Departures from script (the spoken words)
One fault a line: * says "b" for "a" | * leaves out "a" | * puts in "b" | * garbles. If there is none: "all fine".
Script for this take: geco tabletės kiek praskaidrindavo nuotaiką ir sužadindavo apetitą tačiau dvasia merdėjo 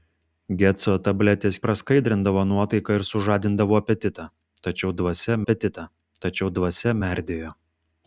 * leaves out "kiek"
* puts in "apetitą tačiau dvasia"